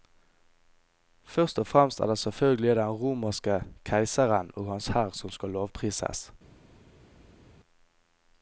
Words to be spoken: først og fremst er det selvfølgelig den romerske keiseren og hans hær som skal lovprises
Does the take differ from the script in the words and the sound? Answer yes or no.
no